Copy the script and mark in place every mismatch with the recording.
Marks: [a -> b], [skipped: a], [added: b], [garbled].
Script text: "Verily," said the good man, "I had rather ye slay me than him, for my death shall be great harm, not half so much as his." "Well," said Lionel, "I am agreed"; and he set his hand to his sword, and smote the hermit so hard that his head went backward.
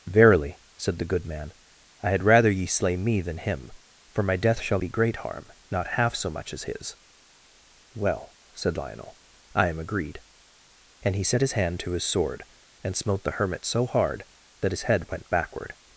"Verily," said the good man, "I had rather ye slay me than him, for my death shall be great harm, not half so much as his." "Well," said Lionel, "I am agreed"; and he set his hand to his sword, and smote the hermit so hard that his head went backward.